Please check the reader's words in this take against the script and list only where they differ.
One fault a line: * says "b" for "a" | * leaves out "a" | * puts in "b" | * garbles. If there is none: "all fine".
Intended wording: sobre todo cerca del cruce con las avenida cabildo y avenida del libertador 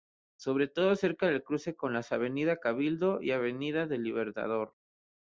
all fine